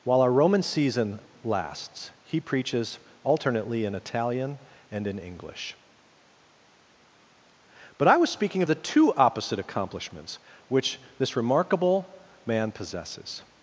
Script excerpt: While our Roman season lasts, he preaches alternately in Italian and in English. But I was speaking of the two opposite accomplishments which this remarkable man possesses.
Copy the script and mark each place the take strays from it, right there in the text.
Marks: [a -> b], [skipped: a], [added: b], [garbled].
While our Roman season lasts, he preaches alternately in Italian and in English. But I was speaking of the two opposite accomplishments which this remarkable man possesses.